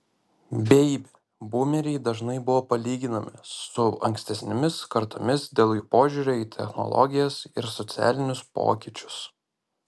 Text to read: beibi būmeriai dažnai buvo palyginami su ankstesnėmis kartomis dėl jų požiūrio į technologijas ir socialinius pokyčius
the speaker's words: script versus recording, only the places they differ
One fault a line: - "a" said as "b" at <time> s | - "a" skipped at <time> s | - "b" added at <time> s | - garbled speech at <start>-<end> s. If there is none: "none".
none